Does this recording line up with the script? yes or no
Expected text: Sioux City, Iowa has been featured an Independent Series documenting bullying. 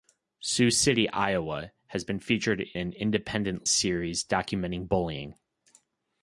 yes